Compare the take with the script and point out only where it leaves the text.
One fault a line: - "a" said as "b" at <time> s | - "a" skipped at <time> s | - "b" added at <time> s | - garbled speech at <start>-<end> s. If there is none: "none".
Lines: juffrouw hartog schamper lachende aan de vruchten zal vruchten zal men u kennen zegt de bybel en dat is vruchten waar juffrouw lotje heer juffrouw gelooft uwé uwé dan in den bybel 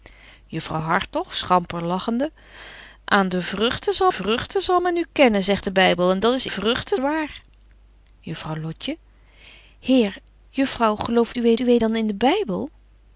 none